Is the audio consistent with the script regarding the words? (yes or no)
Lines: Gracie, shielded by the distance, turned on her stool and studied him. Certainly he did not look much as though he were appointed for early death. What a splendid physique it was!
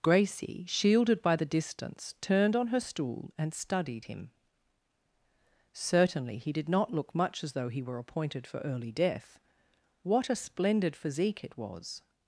yes